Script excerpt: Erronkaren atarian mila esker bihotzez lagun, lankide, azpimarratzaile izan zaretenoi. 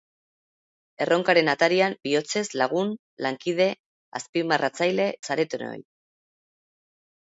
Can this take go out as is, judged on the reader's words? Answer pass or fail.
fail